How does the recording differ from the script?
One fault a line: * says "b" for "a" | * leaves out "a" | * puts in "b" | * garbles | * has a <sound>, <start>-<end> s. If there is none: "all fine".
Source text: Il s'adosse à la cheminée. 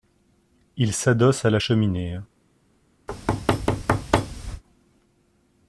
* has a thud, 3.1-4.6 s